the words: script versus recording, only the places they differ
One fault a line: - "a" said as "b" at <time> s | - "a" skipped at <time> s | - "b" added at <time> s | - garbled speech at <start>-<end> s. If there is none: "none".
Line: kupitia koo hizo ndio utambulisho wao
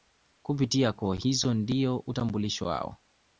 none